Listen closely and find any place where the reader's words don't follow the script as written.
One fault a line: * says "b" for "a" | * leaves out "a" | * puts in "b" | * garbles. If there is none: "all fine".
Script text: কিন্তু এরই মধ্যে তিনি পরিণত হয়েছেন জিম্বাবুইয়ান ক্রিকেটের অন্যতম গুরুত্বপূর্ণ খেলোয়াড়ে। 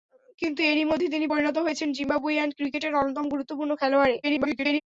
* garbles